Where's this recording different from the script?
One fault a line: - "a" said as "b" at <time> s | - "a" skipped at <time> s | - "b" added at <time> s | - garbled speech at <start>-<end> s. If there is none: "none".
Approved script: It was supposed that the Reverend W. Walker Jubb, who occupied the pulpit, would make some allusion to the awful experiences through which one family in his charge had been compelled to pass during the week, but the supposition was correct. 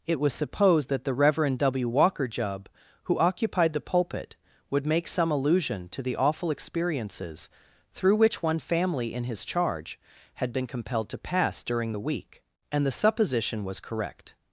- "but" said as "and" at 12.7 s